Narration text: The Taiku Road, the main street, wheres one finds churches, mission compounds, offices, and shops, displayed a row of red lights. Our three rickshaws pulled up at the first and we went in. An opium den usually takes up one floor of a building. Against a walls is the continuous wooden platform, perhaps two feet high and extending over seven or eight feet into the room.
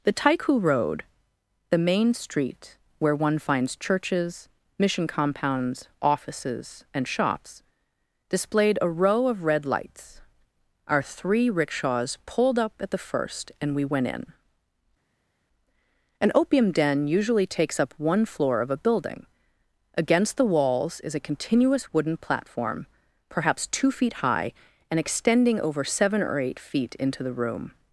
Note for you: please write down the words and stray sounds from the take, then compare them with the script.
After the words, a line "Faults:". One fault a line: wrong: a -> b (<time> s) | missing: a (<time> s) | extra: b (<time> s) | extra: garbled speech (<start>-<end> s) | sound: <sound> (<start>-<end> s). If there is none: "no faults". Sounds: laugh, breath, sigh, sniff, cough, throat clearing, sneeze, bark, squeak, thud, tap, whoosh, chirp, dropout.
The Taiku Road, the main street, where one finds churches, mission compounds, offices, and shops, displayed a row of red lights. Our three rickshaws pulled up at the first and we went in. An opium den usually takes up one floor of a building. Against the walls is a continuous wooden platform, perhaps two feet high and extending over seven or eight feet into the room.
Faults:
wrong: wheres -> where (3.0 s)
wrong: a -> the (20.4 s)
wrong: the -> a (21.2 s)